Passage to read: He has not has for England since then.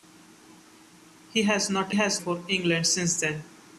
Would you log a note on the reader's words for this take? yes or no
no